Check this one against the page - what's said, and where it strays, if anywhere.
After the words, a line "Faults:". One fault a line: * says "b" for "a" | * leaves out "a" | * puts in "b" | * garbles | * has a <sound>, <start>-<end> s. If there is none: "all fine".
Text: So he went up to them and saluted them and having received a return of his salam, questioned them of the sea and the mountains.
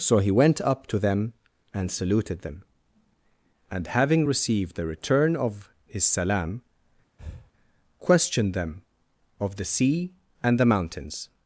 So he went up to them and saluted them and having received the return of his salam, questioned them of the sea and the mountains.
Faults:
* says "the" for "a"
* has a breath, 7.2-7.5 s